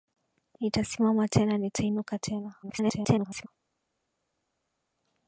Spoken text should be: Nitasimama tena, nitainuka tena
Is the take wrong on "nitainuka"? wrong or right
right